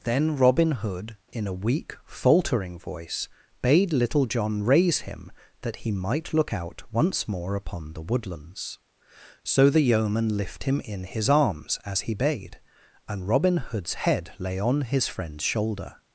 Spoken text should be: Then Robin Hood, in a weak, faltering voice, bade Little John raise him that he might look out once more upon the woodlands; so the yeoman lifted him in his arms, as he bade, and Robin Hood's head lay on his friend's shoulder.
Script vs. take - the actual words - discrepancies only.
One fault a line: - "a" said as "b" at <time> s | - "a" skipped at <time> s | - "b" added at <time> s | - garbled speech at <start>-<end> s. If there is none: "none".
- "lifted" said as "lift" at 10.3 s